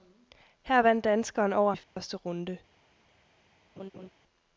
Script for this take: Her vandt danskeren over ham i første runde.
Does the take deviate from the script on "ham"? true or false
true